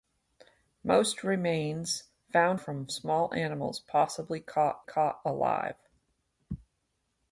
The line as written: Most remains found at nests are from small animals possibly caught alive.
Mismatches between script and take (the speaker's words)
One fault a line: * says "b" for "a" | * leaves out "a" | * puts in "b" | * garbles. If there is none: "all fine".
* leaves out "at nests are"
* puts in "caught"